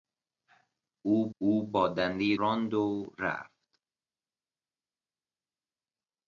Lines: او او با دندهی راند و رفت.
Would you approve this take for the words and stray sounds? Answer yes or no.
yes